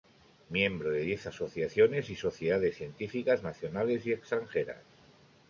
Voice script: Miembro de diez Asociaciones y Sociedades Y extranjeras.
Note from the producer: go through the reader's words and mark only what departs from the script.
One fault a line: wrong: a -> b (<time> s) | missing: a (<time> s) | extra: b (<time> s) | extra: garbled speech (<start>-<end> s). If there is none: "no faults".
extra: Científicas nacionales (2.8 s)